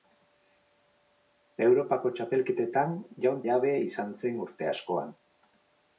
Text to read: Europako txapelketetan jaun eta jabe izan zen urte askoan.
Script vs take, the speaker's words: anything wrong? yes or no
yes